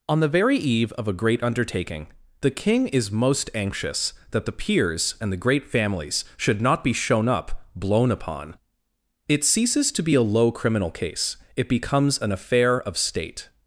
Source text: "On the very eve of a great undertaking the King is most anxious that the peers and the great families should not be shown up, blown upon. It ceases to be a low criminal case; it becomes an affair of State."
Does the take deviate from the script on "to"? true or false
false